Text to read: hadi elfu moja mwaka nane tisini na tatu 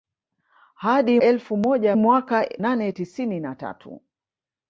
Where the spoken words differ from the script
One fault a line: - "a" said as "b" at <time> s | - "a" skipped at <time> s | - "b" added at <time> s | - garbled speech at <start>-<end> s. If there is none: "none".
none